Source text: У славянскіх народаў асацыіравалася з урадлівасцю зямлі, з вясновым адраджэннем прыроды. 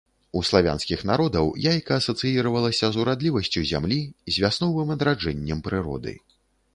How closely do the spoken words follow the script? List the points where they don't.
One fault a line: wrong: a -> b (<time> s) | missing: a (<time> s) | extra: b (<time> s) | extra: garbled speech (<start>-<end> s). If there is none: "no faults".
extra: яйка (1.7 s)